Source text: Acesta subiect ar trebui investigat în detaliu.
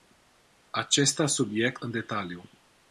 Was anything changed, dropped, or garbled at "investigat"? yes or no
yes